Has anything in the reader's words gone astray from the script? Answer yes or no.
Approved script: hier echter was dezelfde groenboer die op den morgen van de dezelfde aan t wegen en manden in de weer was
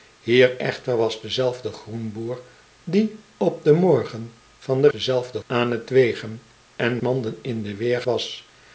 no